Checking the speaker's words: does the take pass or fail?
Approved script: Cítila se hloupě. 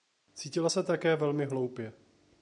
fail